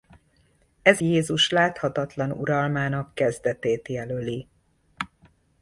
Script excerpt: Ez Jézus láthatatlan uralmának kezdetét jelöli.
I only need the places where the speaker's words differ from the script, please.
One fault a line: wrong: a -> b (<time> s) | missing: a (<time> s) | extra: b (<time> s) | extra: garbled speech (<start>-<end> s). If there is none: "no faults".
no faults